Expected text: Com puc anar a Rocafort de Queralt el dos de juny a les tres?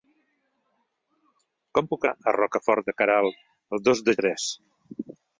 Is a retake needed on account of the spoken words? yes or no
yes